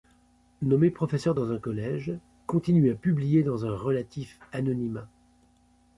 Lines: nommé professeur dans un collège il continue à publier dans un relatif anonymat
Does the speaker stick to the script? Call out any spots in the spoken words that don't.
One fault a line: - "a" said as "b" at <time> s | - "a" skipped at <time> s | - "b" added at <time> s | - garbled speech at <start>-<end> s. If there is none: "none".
- "il" skipped at 2.1 s